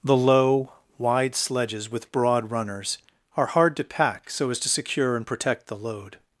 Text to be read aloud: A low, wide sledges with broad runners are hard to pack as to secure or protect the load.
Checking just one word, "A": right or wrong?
wrong